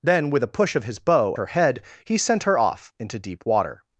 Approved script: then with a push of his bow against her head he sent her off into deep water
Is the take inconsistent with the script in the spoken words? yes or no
yes